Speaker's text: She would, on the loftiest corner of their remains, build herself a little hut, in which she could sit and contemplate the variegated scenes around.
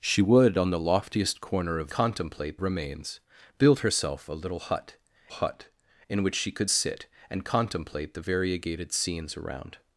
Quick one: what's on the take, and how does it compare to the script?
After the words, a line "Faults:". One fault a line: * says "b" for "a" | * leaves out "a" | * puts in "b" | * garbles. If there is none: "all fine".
She would, on the loftiest corner of contemplate remains, build herself a little hut hut, in which she could sit and contemplate the variegated scenes around.
Faults:
* says "contemplate" for "their"
* puts in "hut"